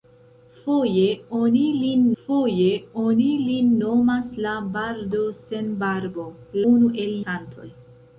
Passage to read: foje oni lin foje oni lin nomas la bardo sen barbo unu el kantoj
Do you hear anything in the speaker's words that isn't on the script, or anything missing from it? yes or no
no